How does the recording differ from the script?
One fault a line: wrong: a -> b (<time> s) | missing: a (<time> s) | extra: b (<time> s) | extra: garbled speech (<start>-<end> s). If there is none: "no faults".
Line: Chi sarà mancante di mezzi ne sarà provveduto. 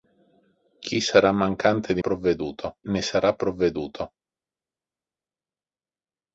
wrong: mezzi -> provveduto (2.0 s)